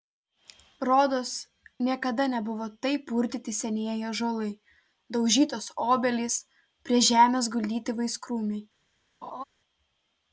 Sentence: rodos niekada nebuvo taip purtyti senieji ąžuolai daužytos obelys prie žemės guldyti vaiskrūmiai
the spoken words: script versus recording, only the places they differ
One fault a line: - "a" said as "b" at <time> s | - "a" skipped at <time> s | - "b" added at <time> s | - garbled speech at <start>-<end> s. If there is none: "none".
none